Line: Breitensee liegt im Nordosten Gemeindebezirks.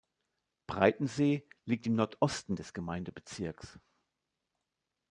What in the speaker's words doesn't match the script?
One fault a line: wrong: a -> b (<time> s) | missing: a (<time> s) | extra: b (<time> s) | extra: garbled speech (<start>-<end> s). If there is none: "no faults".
extra: des (2.5 s)